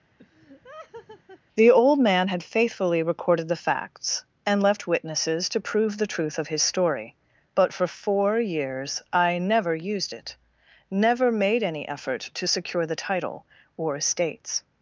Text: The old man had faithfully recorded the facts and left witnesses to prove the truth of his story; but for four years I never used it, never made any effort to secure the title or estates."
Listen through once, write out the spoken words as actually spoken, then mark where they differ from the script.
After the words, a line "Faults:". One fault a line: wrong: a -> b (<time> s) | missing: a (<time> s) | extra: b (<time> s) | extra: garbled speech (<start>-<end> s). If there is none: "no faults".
The old man had faithfully recorded the facts and left witnesses to prove the truth of his story; but for four years I never used it, never made any effort to secure the title or estates."
Faults:
no faults